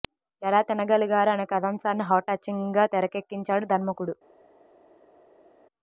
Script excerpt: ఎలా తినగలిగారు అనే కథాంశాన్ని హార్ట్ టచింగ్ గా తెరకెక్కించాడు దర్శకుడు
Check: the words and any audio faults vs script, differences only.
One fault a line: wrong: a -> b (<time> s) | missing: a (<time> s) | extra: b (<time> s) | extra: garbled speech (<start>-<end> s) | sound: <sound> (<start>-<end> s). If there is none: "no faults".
no faults